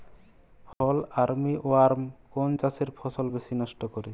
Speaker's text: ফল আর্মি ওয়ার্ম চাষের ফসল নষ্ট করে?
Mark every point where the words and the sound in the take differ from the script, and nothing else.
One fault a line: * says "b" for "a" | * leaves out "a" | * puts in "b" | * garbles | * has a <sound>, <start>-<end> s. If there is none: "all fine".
* has a dropout, 0.7-0.8 s
* puts in "কোন"
* puts in "বেশি"